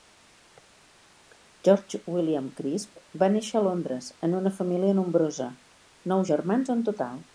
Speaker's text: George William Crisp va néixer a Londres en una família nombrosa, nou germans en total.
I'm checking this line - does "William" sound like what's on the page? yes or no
yes